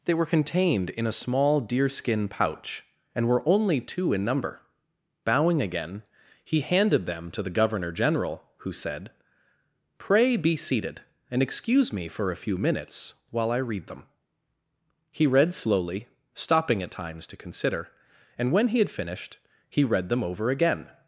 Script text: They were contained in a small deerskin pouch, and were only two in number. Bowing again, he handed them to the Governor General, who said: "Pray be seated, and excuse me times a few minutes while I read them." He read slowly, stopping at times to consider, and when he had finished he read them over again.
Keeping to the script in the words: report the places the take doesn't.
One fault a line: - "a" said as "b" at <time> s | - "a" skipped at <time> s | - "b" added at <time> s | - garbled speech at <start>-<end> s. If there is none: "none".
- "times" said as "for" at 12.1 s